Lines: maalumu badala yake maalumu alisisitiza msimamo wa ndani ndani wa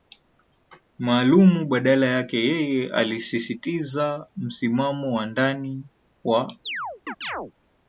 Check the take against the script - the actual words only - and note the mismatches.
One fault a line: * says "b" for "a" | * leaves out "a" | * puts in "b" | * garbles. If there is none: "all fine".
* says "yeye" for "maalumu"
* leaves out "ndani"